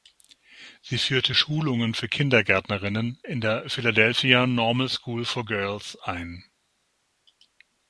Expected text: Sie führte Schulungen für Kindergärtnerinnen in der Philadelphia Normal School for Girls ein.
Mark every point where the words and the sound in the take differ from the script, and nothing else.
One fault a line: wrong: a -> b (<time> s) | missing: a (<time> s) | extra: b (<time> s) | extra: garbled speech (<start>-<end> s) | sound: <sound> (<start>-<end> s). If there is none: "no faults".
no faults